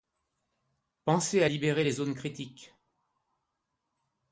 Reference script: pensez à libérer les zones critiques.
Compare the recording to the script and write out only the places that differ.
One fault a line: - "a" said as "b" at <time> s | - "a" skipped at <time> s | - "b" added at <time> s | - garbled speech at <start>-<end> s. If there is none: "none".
none